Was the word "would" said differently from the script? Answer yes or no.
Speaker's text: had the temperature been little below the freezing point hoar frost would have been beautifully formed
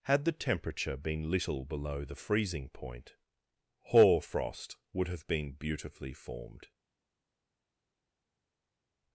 no